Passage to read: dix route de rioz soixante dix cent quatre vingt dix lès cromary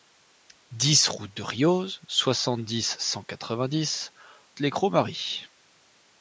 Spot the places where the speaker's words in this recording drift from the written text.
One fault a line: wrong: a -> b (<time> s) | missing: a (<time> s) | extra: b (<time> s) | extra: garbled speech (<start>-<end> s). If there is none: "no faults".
no faults